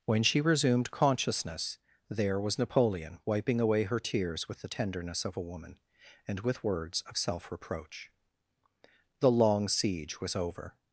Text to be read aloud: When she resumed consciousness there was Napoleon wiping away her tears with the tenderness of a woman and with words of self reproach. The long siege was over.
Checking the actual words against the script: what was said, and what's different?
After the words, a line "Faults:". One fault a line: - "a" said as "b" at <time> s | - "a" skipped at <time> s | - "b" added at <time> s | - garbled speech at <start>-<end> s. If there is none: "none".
When she resumed consciousness there was Napoleon wiping away her tears with the tenderness of a woman and with words of self reproach. The long siege was over.
Faults:
none